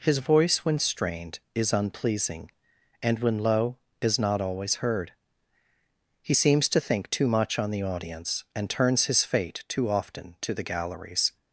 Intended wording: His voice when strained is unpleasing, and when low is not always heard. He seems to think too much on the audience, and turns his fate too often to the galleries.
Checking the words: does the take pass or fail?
pass